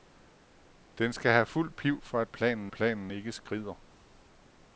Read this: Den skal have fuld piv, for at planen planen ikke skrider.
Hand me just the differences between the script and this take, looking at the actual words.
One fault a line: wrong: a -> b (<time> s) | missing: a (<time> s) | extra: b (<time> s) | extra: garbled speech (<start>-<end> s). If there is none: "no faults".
no faults